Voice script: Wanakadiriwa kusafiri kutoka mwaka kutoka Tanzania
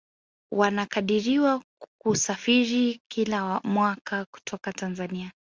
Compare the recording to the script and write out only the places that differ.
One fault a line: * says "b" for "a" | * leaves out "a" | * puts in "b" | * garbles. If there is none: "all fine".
* says "kila" for "kutoka"